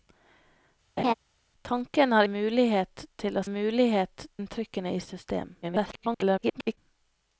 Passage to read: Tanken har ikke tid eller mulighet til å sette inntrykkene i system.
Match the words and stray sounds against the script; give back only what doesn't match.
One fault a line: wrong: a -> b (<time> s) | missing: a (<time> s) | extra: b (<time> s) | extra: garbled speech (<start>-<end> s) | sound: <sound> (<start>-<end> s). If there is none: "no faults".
sound: laugh (1.0-1.1 s)
missing: ikke tid eller (2.2 s)
wrong: sette -> mulighet (3.5 s)
extra: garbled speech (5.6-6.8 s)